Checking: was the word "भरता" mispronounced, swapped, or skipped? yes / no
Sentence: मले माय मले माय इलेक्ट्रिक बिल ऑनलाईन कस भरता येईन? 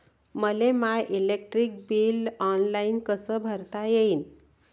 no